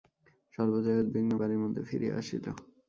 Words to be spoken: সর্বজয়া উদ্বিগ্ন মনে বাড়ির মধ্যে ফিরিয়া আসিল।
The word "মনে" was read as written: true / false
false